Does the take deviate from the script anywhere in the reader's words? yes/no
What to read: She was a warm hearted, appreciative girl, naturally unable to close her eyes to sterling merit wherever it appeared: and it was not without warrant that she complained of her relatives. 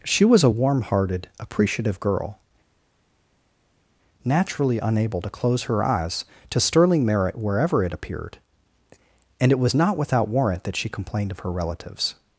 no